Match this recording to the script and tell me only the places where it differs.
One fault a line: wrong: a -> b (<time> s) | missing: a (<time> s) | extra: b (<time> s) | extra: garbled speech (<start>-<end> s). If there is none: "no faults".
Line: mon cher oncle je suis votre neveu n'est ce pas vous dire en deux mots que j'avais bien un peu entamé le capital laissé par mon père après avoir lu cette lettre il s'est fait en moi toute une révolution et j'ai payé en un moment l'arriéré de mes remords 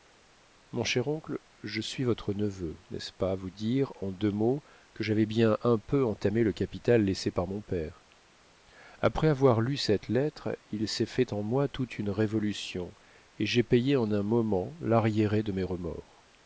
no faults